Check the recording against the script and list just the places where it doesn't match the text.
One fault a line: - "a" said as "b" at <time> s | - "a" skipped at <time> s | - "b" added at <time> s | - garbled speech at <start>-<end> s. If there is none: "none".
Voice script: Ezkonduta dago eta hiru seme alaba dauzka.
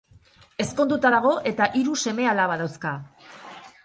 none